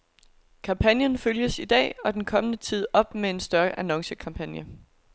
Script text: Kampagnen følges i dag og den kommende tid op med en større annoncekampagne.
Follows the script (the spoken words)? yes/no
yes